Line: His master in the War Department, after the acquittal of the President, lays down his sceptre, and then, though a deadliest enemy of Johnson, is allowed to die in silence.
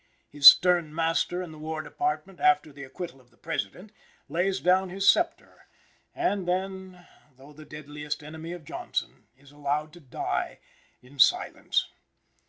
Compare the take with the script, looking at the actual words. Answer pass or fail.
fail